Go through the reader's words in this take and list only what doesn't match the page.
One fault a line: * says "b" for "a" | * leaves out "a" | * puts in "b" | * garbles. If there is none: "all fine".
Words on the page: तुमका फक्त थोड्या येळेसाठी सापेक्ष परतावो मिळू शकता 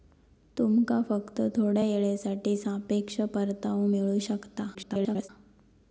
* garbles